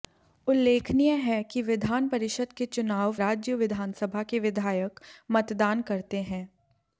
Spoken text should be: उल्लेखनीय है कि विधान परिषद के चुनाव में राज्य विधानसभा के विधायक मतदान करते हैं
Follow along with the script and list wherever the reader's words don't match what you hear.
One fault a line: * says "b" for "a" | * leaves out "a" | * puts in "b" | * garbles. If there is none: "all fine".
* leaves out "में"